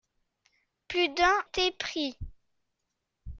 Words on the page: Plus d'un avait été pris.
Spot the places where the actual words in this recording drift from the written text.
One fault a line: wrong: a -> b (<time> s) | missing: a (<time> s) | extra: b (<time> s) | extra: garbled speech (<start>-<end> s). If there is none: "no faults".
missing: avait (1.4 s)